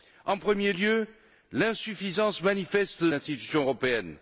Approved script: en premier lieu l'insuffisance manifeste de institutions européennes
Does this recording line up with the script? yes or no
yes